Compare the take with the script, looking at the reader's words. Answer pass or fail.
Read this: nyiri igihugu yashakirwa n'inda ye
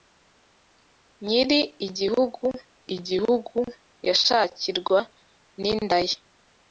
fail